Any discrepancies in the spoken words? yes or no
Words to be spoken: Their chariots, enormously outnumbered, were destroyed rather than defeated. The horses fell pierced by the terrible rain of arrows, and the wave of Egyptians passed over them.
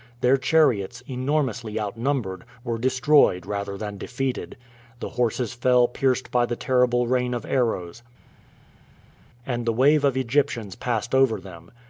no